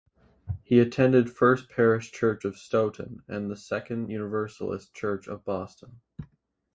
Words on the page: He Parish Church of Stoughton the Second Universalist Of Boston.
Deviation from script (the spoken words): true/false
true